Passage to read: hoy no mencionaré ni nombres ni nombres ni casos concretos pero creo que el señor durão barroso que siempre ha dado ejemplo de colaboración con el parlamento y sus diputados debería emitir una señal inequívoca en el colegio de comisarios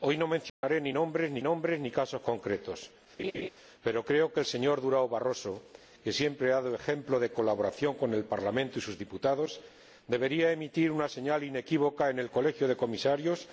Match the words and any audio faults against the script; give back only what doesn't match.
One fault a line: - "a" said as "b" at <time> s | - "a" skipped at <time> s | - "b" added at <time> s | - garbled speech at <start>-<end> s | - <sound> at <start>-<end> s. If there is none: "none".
- dropout at 0.5-0.6 s
- laugh at 3.2-3.5 s